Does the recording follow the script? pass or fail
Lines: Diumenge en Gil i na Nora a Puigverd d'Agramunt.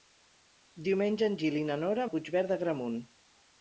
pass